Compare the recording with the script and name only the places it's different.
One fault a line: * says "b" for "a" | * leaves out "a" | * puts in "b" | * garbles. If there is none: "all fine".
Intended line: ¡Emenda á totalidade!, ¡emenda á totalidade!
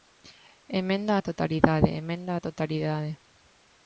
all fine